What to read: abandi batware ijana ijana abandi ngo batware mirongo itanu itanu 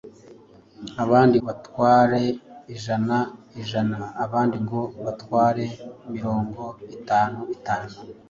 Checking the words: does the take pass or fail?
pass